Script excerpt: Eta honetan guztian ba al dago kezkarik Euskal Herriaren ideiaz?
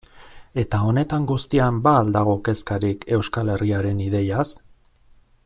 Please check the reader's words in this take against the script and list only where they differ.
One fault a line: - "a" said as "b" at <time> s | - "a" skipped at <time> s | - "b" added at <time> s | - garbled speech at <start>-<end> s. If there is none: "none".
none